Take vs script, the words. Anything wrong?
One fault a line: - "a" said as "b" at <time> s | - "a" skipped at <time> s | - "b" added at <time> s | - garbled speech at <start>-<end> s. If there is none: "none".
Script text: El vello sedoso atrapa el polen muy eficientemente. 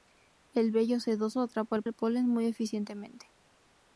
- "el" added at 1.8 s